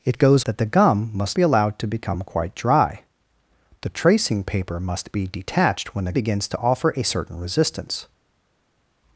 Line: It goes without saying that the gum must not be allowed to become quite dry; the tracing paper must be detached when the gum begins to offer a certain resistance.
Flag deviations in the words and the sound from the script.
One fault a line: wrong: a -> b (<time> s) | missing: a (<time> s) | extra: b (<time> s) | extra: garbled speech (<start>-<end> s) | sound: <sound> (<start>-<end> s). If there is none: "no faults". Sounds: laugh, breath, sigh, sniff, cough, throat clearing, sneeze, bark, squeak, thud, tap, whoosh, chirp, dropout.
missing: without saying (0.5 s)
missing: not (1.4 s)
missing: gum (6.1 s)